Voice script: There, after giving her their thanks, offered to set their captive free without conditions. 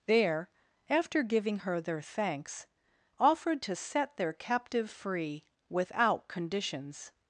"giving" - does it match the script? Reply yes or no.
yes